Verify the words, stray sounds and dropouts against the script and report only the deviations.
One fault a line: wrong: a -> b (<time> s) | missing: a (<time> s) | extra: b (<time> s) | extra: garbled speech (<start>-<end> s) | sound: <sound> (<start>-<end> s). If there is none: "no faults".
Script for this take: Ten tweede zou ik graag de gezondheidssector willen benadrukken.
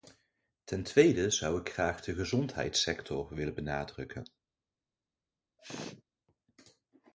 sound: sneeze (5.6-6.0 s)